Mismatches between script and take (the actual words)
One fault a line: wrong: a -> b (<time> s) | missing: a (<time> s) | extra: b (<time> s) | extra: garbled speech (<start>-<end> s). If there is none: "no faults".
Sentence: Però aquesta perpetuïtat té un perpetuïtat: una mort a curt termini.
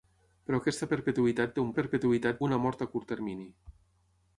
no faults